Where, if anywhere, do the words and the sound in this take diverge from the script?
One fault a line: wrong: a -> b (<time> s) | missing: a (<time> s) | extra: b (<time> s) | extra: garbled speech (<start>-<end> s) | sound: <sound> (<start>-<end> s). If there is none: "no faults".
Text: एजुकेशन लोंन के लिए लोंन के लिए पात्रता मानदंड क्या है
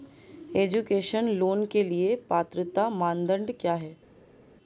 missing: लोंन के लिए (2.1 s)